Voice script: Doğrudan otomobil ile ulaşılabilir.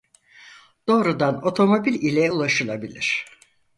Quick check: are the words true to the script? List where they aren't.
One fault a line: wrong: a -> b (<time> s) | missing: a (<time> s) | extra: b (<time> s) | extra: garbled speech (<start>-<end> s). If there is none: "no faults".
no faults